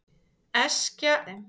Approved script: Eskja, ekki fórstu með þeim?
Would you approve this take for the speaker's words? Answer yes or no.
no